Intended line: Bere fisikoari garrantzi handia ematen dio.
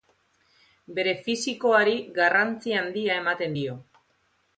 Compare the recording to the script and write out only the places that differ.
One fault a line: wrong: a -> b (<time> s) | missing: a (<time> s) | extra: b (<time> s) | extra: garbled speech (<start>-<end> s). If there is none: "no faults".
no faults